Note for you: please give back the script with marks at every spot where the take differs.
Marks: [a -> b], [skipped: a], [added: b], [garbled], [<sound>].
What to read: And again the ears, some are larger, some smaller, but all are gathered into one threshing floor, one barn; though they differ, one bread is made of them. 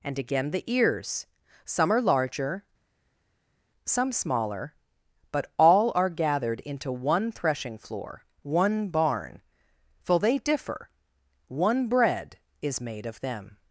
And again the ears, some are larger, some smaller, but all are gathered into one threshing floor, one barn; [though -> for] they differ, one bread is made of them.